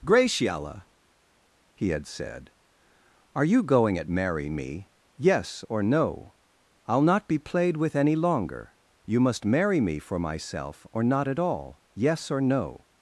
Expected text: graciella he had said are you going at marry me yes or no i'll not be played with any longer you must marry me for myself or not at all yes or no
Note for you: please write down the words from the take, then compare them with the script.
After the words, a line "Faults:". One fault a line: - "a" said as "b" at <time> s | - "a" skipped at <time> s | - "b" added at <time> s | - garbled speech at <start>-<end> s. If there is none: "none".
graciella he had said are you going at marry me yes or no i'll not be played with any longer you must marry me for myself or not at all yes or no
Faults:
none